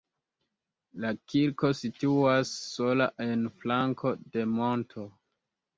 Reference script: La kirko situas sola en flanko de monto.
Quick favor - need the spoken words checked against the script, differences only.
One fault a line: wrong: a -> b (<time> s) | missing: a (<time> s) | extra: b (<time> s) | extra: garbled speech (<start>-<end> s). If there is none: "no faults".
no faults